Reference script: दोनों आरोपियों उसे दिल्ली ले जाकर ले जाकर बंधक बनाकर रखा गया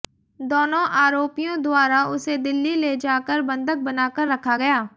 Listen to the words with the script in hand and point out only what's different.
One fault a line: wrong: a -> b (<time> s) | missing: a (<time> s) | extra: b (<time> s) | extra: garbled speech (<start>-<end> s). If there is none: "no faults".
extra: द्वारा (1.6 s)
missing: ले जाकर (3.4 s)